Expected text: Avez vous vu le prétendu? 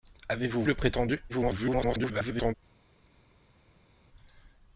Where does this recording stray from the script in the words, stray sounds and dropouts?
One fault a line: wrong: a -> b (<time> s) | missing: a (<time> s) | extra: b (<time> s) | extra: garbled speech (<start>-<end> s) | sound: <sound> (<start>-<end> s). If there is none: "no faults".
missing: vu (0.6 s)
extra: garbled speech (1.3-2.5 s)